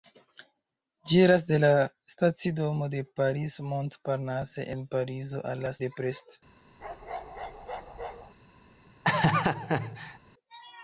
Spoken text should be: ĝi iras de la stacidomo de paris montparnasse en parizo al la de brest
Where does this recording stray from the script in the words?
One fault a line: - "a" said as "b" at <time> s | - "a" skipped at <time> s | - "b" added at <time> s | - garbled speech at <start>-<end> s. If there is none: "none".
none